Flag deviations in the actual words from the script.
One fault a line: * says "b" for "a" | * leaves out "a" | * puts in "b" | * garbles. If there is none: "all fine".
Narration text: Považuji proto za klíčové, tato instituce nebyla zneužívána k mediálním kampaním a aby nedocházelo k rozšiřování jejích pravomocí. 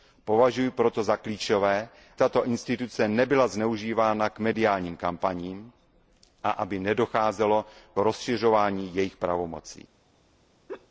all fine